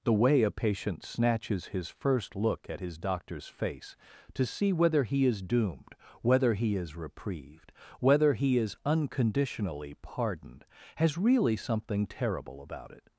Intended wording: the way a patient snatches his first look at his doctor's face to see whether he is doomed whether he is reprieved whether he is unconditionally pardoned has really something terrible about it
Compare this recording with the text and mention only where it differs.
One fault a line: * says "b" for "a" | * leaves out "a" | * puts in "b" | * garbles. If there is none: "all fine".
all fine